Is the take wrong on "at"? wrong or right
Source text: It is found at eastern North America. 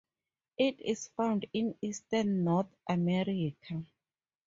wrong